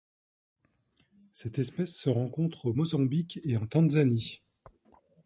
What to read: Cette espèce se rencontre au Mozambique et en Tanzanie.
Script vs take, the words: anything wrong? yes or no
no